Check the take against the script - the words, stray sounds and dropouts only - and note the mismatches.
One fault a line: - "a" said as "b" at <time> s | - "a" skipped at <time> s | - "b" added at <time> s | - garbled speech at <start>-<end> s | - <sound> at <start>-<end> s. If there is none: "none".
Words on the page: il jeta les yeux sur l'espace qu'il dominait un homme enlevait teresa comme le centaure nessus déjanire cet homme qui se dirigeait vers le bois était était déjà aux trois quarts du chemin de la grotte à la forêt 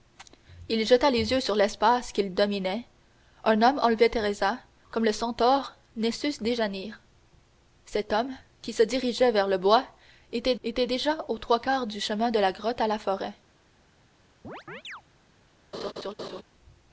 - chirp at 14.4-15.0 s
- laugh at 15.7-16.4 s